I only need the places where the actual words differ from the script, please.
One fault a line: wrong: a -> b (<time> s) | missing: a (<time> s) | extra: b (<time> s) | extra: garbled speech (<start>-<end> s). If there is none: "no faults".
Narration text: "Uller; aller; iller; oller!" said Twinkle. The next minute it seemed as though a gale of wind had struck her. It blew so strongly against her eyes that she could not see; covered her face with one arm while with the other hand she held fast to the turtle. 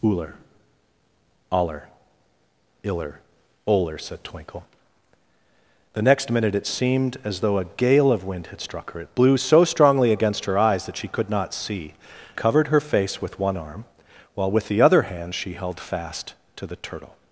no faults